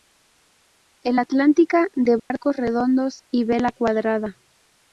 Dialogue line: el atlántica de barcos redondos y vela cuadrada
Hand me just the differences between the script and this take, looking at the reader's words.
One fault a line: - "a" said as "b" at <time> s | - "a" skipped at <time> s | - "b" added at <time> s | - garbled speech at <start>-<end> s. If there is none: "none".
none